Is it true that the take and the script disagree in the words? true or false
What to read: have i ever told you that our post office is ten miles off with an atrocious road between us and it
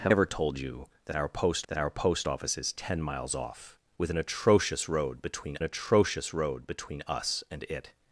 true